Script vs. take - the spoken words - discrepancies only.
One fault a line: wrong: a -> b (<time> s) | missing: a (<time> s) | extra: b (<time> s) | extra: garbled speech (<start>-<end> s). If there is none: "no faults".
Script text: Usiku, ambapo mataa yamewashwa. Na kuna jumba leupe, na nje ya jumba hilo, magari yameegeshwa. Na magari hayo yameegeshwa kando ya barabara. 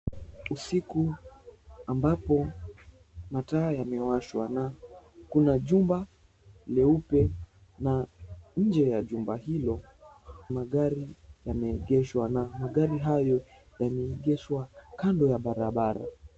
no faults